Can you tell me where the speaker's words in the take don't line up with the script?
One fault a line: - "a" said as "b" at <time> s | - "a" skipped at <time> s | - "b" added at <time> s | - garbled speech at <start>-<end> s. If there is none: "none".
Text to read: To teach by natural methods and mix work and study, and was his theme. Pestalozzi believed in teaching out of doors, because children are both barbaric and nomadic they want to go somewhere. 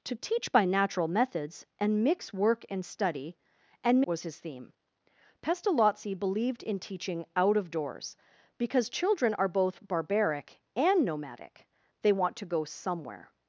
none